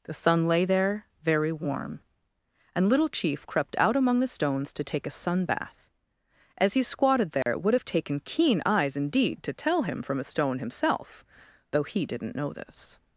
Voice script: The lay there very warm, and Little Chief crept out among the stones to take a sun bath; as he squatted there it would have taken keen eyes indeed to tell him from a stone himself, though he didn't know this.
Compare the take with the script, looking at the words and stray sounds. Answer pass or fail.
fail